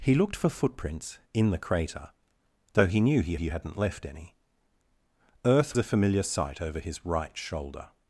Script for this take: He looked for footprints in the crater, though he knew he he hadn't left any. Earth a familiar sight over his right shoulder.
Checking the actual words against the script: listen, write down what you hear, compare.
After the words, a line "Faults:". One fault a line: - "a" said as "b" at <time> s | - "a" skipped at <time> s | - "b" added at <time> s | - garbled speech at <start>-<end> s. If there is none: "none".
He looked for footprints in the crater, though he knew he he hadn't left any. Earth a familiar sight over his right shoulder.
Faults:
none